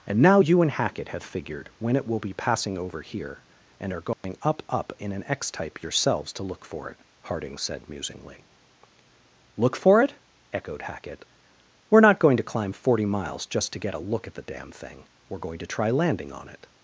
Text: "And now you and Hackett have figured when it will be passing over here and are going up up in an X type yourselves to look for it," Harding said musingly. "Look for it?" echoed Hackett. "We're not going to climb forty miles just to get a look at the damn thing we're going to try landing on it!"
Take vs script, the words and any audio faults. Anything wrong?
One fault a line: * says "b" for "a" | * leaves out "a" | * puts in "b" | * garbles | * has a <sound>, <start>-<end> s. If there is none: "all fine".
* has a dropout, 4.1-4.2 s